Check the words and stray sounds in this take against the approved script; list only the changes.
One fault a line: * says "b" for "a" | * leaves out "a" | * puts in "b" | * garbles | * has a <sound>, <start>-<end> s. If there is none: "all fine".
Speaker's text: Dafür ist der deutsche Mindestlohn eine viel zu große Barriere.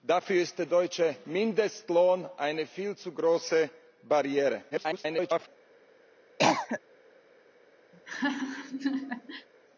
* garbles
* has a cough, 6.4-6.8 s
* has a laugh, 7.9-9.5 s